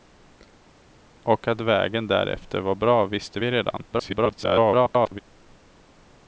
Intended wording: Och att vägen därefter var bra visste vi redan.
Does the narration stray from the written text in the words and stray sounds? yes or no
yes